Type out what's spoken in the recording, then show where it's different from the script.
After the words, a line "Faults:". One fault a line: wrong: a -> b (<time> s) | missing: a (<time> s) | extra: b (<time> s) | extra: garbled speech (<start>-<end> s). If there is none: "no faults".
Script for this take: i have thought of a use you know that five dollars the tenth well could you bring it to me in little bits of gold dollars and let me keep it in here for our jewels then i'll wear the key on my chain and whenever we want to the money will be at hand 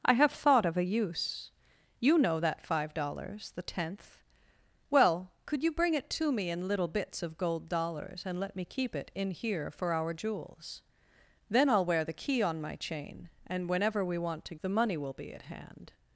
i have thought of a use you know that five dollars the tenth well could you bring it to me in little bits of gold dollars and let me keep it in here for our jewels then i'll wear the key on my chain and whenever we want to the money will be at hand
Faults:
no faults